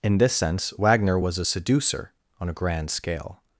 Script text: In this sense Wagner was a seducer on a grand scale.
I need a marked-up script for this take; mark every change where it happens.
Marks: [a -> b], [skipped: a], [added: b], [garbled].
In this sense Wagner was a seducer on a grand scale.